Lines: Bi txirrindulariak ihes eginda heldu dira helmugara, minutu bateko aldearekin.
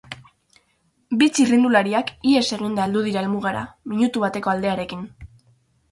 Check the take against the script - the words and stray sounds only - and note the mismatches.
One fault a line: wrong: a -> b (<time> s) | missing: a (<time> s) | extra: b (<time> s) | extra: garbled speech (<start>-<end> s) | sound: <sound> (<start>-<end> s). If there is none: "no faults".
no faults